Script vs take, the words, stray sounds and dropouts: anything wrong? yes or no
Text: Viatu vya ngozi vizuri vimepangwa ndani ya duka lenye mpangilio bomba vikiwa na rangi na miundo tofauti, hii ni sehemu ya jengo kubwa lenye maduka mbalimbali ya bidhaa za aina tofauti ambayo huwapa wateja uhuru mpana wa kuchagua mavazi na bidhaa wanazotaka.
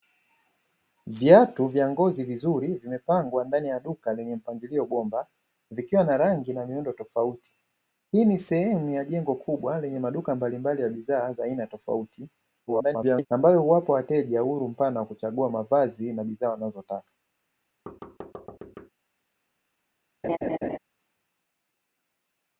yes